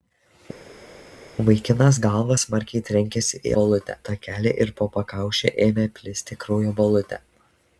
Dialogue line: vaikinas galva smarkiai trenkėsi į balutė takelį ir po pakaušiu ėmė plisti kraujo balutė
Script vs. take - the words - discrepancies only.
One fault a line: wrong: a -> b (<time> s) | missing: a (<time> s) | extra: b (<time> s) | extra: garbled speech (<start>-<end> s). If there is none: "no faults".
no faults